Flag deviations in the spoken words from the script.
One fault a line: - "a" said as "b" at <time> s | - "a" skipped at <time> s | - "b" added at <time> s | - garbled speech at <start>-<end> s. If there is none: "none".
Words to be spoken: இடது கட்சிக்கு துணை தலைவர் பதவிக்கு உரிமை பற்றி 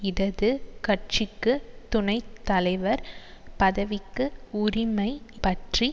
none